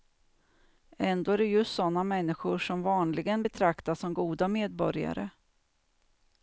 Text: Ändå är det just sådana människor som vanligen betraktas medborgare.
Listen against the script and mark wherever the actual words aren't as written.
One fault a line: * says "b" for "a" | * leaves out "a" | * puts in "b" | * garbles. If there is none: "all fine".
* puts in "som goda"